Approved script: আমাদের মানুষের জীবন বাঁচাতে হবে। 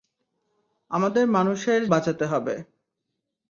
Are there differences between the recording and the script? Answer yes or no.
yes